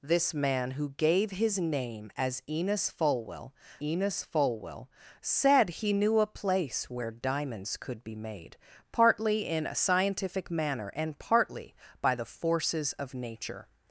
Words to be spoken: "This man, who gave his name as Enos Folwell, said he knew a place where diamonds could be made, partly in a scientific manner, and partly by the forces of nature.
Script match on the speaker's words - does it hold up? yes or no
no